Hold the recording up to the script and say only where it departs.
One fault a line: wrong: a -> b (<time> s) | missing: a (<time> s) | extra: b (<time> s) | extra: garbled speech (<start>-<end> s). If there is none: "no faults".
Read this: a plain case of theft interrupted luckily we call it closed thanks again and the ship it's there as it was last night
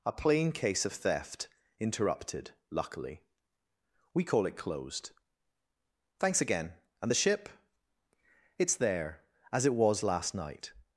no faults